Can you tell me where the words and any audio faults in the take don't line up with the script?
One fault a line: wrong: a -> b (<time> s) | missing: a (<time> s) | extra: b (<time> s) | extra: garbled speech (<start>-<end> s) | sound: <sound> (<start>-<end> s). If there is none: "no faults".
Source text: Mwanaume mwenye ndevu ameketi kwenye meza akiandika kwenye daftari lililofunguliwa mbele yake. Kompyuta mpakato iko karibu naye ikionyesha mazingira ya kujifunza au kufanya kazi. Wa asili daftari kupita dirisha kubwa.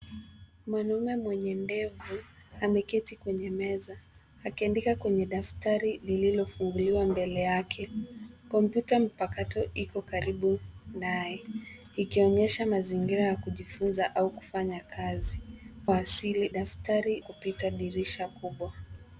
no faults